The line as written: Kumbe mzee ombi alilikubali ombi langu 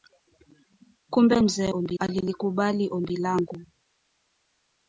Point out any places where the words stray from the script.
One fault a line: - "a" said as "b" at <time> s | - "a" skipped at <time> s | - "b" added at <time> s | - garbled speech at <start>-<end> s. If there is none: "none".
none